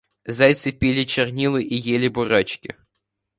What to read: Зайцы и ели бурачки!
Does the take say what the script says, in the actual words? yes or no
no